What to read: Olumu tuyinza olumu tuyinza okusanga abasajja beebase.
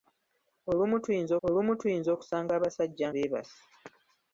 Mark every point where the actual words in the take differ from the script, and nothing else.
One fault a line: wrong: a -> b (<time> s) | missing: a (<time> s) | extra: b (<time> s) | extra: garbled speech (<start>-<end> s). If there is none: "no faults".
no faults